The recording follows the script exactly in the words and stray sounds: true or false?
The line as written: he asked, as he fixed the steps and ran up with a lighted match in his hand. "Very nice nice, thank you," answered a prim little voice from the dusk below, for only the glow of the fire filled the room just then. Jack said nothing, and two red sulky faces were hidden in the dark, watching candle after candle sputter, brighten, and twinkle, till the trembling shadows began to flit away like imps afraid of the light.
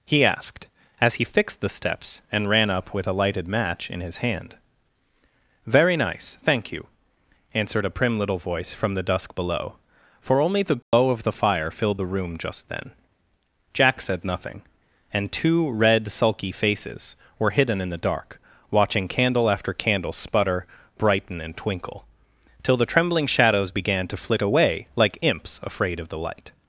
false